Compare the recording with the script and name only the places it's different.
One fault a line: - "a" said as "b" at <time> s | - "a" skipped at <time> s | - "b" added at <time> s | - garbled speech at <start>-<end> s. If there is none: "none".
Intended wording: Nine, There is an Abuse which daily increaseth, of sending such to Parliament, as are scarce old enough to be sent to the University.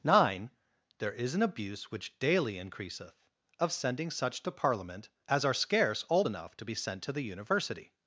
none